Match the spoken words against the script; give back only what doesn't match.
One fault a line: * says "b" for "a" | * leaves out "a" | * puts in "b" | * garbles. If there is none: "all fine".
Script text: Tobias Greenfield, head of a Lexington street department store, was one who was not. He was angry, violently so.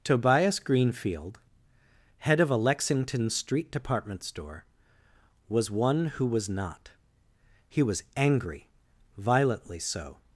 all fine